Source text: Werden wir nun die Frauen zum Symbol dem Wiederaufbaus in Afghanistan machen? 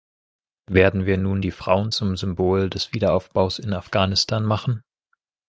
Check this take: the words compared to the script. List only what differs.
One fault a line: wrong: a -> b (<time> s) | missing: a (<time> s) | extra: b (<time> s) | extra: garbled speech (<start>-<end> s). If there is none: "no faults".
wrong: dem -> des (2.7 s)